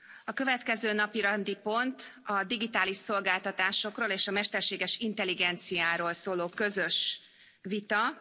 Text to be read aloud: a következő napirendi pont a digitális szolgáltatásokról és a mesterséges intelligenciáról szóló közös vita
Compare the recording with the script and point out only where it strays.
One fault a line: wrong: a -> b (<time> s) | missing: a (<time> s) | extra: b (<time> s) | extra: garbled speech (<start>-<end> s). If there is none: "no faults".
no faults